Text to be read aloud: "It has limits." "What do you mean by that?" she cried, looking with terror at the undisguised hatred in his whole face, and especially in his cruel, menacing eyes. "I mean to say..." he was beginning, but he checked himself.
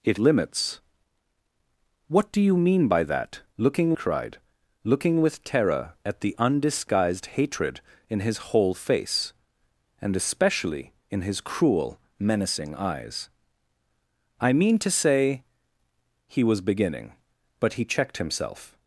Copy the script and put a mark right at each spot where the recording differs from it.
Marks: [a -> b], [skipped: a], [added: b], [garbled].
"It [skipped: has] limits." "What do you mean by that?" [she -> looking] cried, looking with terror at the undisguised hatred in his whole face, and especially in his cruel, menacing eyes. "I mean to say..." he was beginning, but he checked himself.